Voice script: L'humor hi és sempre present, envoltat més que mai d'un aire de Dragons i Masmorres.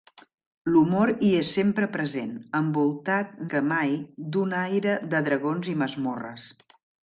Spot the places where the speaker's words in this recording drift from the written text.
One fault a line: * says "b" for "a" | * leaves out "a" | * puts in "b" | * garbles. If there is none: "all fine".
* leaves out "més"